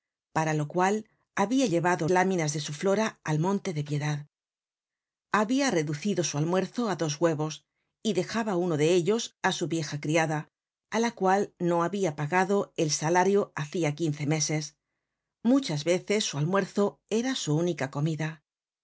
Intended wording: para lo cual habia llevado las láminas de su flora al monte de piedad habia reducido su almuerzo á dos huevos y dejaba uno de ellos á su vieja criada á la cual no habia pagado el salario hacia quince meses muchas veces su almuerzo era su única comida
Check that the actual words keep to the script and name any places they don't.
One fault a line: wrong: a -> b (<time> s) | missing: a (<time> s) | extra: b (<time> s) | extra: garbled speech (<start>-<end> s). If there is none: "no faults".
missing: las (2.1 s)